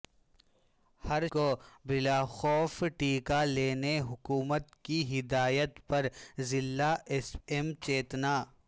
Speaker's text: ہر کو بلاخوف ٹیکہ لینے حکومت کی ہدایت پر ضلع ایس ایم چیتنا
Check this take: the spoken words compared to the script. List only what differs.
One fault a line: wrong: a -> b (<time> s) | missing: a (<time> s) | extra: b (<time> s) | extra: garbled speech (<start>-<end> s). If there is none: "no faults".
no faults